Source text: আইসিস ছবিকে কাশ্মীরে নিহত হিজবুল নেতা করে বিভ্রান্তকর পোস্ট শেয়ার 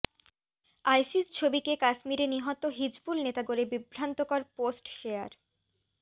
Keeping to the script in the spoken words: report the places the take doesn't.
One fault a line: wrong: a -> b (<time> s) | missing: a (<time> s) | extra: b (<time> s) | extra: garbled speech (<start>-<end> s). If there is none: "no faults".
no faults